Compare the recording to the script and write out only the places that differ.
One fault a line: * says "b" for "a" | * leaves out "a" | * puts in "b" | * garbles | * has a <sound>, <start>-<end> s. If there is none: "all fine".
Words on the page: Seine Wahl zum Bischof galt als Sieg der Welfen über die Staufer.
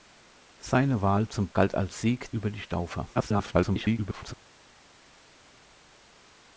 * leaves out "Bischof"
* leaves out "der Welfen"
* garbles